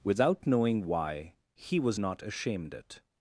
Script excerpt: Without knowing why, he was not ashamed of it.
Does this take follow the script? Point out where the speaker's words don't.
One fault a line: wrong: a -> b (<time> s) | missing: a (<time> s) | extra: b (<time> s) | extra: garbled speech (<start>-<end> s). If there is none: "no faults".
missing: of (2.7 s)